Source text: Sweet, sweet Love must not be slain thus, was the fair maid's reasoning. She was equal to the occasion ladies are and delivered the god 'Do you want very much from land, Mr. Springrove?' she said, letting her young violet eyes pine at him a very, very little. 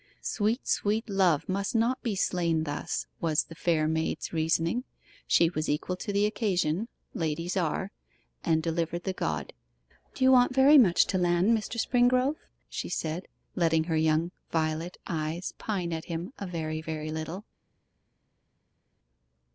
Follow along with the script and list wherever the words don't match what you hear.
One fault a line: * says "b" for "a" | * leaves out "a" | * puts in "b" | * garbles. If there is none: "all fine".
* says "to" for "from"